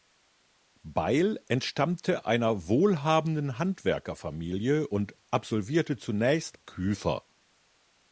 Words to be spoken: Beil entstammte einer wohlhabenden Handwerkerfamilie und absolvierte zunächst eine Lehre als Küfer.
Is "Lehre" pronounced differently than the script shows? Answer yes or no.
yes